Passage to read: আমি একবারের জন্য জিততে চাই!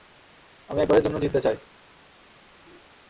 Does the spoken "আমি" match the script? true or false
true